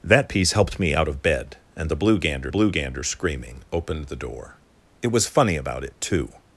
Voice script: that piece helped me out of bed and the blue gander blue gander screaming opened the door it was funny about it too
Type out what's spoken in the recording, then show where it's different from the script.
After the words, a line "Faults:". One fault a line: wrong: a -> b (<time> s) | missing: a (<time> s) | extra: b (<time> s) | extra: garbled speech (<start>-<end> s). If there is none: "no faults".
that piece helped me out of bed and the blue gander blue gander screaming opened the door it was funny about it too
Faults:
no faults